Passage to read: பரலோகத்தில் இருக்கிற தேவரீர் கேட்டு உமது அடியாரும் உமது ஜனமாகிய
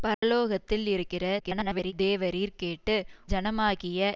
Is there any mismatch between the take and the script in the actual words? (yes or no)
yes